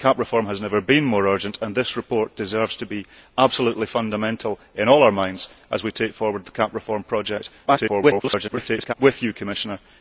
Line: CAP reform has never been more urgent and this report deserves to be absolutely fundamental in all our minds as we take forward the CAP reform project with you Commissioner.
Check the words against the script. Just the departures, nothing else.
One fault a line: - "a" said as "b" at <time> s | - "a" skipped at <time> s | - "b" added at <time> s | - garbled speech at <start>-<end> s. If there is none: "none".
- garbled speech at 7.7-8.9 s